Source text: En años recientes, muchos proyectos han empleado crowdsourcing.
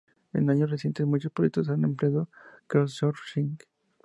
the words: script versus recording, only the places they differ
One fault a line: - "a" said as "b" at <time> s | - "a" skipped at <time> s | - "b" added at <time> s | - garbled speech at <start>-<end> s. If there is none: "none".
none